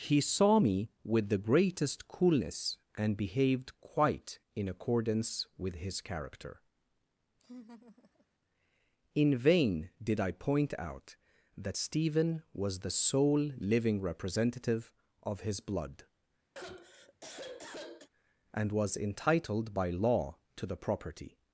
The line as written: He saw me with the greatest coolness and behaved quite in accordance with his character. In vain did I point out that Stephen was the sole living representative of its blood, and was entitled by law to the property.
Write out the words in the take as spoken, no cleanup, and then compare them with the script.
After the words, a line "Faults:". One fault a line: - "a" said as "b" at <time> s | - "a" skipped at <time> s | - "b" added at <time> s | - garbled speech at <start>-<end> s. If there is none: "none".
He saw me with the greatest coolness and behaved quite in accordance with his character. In vain did I point out that Stephen was the sole living representative of his blood, and was entitled by law to the property.
Faults:
- "its" said as "his" at 15.4 s